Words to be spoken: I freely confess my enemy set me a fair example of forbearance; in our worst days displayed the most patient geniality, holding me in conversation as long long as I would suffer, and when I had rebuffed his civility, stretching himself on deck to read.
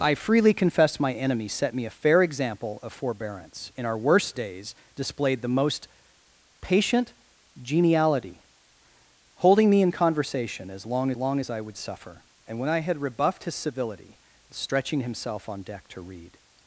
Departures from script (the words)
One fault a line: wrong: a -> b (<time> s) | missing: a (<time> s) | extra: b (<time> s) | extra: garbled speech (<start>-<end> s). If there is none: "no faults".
no faults